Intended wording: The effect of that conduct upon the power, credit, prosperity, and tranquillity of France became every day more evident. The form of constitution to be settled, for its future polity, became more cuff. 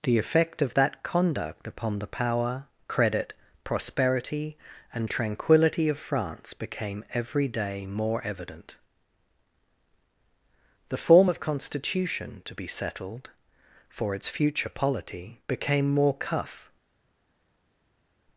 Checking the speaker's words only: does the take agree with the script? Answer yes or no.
yes